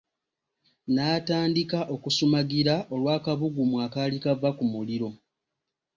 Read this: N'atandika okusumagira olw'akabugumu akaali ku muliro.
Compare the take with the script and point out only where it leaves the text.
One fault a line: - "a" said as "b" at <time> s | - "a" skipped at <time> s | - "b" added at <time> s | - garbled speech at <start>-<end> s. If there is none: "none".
- "kava" added at 4.2 s